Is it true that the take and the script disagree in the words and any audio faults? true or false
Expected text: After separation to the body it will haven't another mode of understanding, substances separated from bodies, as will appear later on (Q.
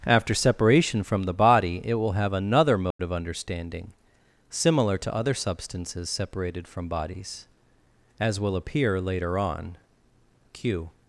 true